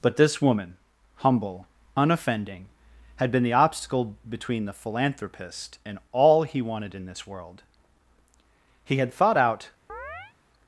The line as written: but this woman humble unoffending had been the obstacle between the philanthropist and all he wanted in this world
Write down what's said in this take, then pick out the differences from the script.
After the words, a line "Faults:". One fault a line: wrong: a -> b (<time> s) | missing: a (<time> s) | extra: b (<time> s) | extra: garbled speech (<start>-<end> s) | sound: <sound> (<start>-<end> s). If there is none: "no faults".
but this woman humble unoffending had been the obstacle between the philanthropist and all he wanted in this world he had thought out
Faults:
extra: he had thought out (8.8 s)
sound: chirp (9.9-10.3 s)